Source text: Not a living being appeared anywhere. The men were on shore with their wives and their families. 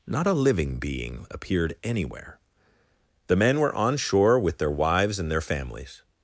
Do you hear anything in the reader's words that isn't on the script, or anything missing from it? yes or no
no